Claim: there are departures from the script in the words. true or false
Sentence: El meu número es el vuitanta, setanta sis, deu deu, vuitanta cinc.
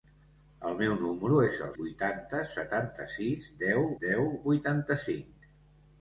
false